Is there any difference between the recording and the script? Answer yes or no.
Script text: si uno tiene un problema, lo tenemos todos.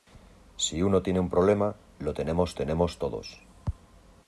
yes